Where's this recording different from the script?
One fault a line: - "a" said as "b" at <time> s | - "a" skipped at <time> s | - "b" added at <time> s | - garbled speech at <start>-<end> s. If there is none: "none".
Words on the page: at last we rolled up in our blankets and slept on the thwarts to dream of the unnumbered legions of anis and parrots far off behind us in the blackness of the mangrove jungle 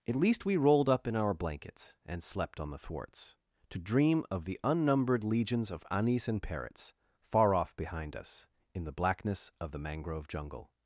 - "last" said as "least" at 0.1 s